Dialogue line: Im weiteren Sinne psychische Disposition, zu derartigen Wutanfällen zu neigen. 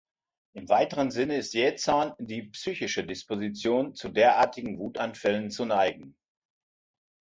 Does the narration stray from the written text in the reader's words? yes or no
yes